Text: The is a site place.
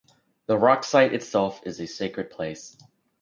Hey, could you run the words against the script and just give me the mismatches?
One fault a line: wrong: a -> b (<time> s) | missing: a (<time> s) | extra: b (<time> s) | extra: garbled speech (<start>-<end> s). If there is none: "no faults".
extra: rock site itself (0.6 s)
wrong: site -> sacred (1.9 s)